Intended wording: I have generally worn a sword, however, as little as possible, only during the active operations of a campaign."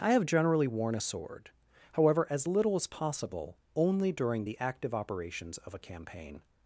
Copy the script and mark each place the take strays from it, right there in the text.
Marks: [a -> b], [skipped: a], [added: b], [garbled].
I have generally worn a sword, however, as little as possible, only during the active operations of a campaign."